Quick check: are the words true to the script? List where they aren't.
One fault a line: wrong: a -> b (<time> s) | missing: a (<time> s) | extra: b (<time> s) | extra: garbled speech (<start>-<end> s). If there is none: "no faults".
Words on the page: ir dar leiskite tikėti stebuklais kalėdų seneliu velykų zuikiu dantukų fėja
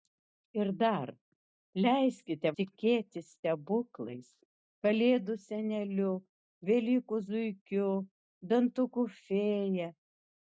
no faults